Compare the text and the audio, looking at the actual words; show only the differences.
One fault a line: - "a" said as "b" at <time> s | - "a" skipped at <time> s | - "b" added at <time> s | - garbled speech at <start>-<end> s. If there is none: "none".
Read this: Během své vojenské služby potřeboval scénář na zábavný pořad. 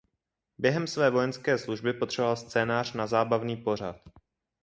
none